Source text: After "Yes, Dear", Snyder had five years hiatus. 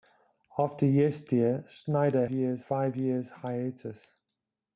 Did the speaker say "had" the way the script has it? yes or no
no